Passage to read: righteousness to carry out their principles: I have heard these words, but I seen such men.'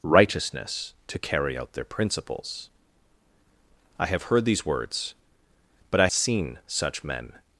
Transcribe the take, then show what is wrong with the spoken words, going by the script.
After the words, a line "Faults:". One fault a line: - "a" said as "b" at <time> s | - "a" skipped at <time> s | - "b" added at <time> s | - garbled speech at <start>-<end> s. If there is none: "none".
righteousness to carry out their principles: I have heard these words, but I seen such men.'
Faults:
none